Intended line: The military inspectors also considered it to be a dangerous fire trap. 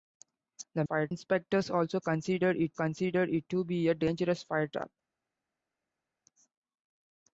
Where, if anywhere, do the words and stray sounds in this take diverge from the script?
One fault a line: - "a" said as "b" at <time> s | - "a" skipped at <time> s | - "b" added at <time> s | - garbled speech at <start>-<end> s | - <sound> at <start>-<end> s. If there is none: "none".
- "military" said as "fire" at 0.8 s
- "considered it" added at 2.7 s